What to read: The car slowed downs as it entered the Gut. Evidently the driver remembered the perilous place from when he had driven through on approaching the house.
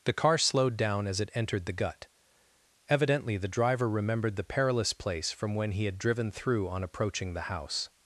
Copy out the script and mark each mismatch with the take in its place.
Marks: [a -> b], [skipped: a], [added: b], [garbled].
The car slowed [downs -> down] as it entered the Gut. Evidently the driver remembered the perilous place from when he had driven through on approaching the house.